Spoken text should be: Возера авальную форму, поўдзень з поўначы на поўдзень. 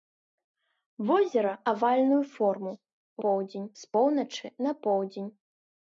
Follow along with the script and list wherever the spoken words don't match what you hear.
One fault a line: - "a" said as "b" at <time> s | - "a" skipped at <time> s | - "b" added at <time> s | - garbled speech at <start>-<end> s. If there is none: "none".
none